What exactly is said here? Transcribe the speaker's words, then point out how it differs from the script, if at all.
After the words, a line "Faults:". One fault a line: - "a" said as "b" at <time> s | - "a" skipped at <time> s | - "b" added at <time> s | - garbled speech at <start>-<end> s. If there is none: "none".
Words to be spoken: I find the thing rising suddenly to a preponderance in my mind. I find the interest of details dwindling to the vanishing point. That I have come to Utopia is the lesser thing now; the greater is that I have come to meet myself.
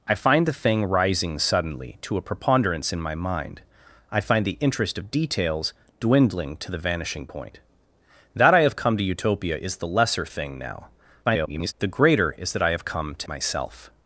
I find the thing rising suddenly to a preponderance in my mind. I find the interest of details dwindling to the vanishing point. That I have come to Utopia is the lesser thing now; [garbled] the greater is that I have come to myself.
Faults:
- garbled speech at 11.2-11.7 s
- "meet" skipped at 13.3 s